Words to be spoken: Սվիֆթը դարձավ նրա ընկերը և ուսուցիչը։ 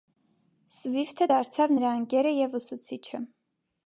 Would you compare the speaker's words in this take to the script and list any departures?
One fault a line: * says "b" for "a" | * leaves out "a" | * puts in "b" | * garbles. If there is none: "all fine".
all fine